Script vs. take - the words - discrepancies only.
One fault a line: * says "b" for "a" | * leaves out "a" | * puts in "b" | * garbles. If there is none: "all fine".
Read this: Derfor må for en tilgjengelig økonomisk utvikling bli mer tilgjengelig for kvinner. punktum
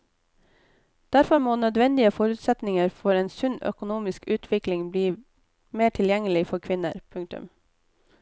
* puts in "nødvendige forutsetninger"
* says "sunn" for "tilgjengelig"